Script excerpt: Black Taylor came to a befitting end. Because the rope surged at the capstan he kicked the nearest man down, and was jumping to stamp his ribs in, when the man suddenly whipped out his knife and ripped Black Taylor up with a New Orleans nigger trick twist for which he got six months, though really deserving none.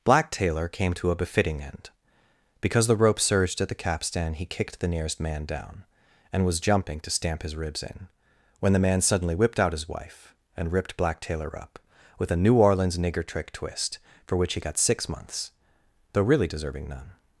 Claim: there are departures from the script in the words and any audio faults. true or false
true